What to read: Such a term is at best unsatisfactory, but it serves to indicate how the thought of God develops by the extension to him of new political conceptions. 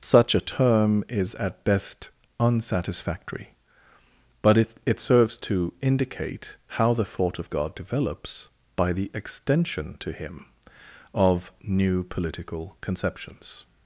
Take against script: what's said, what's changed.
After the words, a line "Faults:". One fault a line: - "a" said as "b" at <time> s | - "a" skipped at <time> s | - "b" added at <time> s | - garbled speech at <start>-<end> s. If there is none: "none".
Such a term is at best unsatisfactory, but it it serves to indicate how the thought of God develops by the extension to him of new political conceptions.
Faults:
- "it" added at 4.8 s